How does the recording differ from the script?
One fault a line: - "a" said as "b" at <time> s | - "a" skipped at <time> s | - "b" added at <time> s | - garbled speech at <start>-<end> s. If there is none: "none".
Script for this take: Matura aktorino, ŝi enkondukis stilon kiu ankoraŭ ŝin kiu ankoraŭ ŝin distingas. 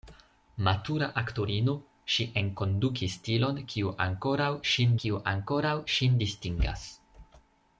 none